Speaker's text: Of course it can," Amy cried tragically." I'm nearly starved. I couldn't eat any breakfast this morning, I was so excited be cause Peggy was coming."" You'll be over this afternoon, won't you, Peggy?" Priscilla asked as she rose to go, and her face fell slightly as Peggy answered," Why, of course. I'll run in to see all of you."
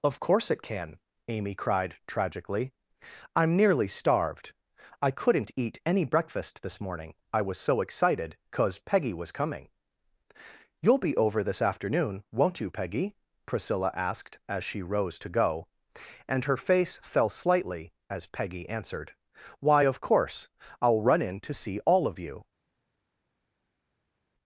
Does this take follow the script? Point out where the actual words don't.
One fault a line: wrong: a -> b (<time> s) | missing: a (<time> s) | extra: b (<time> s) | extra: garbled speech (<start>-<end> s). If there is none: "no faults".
missing: be (8.3 s)